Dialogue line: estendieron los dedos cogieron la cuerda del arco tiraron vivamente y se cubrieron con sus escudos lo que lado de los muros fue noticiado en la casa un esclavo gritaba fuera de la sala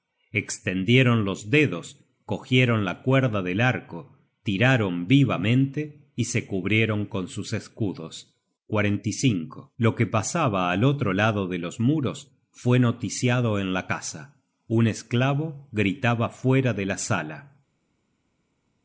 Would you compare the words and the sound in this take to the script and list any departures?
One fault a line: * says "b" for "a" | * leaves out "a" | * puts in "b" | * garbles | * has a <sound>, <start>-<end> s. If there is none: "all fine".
* puts in "pasaba al otro"